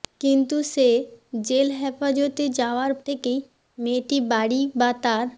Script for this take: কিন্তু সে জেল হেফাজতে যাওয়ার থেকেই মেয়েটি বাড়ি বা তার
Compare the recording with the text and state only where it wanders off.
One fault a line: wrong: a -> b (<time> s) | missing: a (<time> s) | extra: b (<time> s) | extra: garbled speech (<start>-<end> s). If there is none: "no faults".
no faults